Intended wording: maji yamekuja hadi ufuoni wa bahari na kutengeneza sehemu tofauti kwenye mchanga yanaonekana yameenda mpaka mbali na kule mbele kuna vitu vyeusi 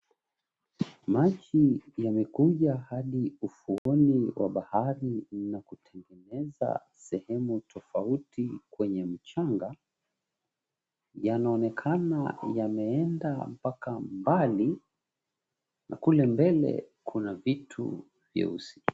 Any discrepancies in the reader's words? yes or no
no